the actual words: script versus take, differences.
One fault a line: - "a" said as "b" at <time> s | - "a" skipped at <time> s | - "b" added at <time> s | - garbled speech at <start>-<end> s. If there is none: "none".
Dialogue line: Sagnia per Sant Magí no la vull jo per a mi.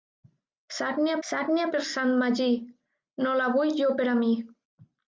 - "sagnia" added at 1.3 s